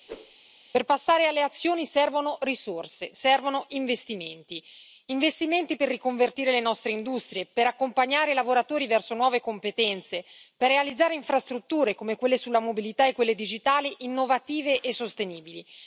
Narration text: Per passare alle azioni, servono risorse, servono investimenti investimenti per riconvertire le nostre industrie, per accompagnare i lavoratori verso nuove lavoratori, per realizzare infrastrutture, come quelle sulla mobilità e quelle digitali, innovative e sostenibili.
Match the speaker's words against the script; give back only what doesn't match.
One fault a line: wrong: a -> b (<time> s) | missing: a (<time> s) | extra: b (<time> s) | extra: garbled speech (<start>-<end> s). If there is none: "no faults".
wrong: lavoratori -> competenze (9.4 s)